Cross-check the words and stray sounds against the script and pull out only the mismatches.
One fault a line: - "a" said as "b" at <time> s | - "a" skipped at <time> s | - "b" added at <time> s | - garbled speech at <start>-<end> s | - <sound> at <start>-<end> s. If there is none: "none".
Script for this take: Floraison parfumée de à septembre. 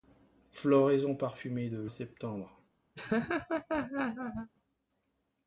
- laugh at 3.0-4.5 s